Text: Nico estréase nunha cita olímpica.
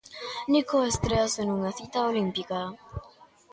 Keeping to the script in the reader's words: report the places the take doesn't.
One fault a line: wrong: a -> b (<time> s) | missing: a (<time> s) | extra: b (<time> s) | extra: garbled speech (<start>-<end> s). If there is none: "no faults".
no faults